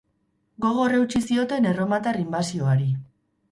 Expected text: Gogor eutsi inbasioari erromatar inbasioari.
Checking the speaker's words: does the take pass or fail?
fail